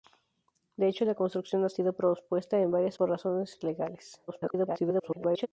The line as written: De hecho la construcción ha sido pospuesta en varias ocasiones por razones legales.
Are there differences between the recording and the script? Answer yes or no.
yes